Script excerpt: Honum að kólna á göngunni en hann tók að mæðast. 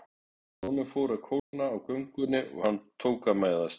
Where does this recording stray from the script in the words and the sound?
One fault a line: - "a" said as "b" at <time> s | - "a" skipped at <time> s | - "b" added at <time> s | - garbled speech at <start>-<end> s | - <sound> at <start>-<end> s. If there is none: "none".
- "fór" added at 0.9 s
- dropout at 1.4-1.5 s
- "en" said as "og" at 2.6 s